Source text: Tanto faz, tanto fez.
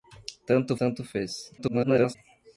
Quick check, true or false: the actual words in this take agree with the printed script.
false